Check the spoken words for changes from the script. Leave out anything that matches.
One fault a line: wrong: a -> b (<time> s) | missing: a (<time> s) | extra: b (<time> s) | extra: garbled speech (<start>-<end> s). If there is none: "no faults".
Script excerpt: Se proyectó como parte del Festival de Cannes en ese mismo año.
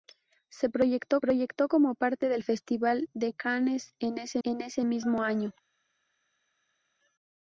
extra: proyectó (1.2 s)
extra: en ese (4.4 s)